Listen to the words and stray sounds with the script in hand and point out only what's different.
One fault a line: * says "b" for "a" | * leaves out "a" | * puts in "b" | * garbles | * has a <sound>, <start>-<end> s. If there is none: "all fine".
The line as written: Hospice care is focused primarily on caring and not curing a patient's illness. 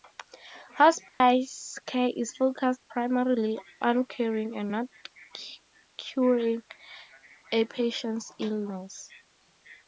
* has a dropout, 1.1-1.2 s